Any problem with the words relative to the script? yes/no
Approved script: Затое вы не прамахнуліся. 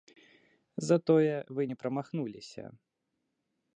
no